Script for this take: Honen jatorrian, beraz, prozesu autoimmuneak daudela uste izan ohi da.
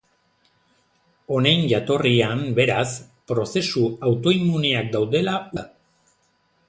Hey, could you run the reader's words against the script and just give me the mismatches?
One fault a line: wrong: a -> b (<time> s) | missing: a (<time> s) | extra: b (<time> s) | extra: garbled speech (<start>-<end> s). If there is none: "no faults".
missing: uste izan ohi (5.4 s)